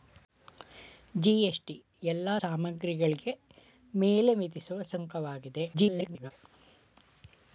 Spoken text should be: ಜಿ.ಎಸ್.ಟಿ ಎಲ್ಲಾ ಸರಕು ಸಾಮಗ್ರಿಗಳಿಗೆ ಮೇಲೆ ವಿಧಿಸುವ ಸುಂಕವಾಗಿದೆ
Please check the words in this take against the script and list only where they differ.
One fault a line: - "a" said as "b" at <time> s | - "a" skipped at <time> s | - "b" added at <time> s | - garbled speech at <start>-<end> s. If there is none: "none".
- "ಸರಕು" skipped at 2.3 s
- garbled speech at 5.7-6.3 s